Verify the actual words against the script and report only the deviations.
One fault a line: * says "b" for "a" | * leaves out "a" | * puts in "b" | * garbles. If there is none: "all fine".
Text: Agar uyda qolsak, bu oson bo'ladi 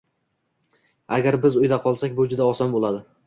* puts in "biz"
* puts in "juda"